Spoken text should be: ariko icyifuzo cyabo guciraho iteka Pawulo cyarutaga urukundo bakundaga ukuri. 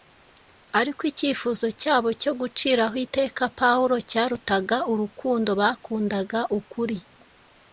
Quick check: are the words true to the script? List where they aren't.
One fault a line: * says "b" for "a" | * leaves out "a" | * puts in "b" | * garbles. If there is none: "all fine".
* puts in "cyo"